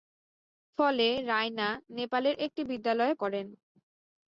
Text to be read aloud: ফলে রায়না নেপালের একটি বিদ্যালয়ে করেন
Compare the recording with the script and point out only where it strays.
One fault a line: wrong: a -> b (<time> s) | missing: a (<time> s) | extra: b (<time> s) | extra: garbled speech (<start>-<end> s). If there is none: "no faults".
no faults